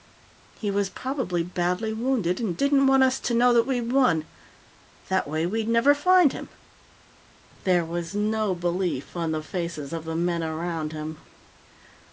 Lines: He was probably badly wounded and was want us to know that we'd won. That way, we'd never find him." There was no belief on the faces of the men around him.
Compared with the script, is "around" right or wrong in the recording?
right